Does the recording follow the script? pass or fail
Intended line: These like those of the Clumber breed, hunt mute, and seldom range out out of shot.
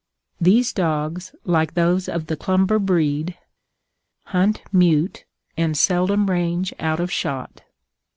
fail